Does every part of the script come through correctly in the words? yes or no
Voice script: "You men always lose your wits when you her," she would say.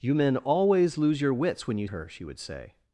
yes